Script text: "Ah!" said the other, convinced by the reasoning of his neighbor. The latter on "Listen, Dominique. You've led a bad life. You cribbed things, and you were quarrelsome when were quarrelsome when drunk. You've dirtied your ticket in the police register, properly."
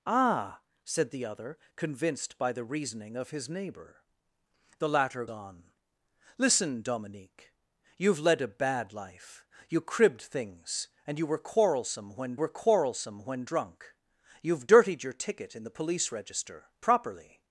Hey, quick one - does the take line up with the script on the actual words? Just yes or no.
yes